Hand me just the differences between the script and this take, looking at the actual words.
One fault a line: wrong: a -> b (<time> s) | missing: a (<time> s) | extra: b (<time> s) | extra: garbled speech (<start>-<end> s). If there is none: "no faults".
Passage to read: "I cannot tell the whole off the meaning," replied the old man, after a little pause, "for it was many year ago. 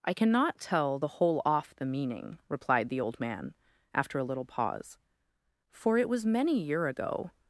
no faults